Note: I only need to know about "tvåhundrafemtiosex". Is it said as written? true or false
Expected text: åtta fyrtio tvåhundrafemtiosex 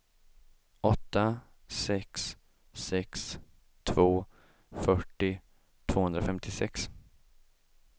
true